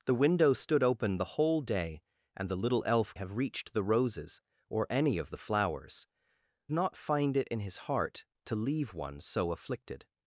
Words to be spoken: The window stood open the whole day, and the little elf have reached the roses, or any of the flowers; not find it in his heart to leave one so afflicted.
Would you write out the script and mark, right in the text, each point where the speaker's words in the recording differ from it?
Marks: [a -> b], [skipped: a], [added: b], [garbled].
The window stood open the whole day, and the little elf have reached the roses, or any of the flowers; not find it in his heart to leave one so afflicted.